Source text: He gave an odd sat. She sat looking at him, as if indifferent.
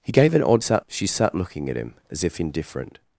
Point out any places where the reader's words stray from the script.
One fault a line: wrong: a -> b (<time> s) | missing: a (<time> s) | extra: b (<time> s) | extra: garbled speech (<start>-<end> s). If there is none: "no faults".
no faults